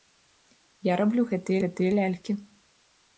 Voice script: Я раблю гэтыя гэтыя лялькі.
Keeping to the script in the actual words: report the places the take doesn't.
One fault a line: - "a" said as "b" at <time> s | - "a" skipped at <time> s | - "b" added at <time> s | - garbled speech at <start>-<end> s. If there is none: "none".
none